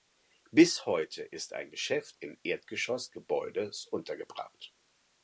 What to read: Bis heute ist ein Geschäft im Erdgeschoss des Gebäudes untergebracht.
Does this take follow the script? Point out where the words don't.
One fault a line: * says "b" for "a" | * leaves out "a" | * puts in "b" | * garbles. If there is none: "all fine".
* leaves out "des"